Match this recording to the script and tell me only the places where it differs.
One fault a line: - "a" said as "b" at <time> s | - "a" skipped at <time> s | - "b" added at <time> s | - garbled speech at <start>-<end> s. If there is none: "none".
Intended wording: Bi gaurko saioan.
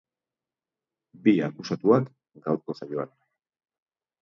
- "akusatuak" added at 1.5 s